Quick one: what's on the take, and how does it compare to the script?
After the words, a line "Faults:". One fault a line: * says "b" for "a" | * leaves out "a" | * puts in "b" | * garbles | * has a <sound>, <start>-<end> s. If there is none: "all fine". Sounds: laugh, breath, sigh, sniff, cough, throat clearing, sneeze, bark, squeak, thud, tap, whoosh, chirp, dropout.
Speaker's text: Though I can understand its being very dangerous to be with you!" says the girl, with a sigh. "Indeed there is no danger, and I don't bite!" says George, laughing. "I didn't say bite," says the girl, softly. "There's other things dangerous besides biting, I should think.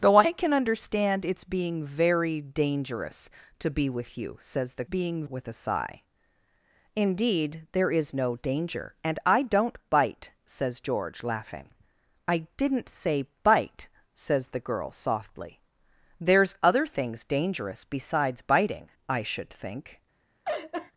Though I can understand its being very dangerous to be with you!" says the being, with a sigh. "Indeed there is no danger, and I don't bite!" says George, laughing. "I didn't say bite," says the girl, softly. "There's other things dangerous besides biting, I should think.
Faults:
* says "being" for "girl"
* has a laugh, 20.4-20.9 s